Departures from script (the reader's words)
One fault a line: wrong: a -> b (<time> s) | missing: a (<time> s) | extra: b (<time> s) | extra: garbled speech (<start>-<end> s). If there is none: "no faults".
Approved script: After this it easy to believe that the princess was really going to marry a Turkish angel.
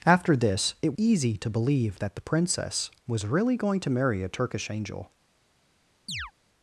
no faults